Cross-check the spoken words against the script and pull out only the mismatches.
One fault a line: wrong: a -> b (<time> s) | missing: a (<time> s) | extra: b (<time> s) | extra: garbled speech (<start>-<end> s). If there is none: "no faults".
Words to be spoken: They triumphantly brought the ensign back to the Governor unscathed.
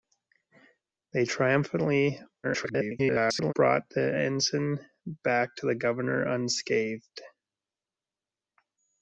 extra: garbled speech (2.4-3.5 s)